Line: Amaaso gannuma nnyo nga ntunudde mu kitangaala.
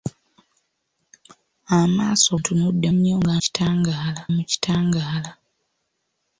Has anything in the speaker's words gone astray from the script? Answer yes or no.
yes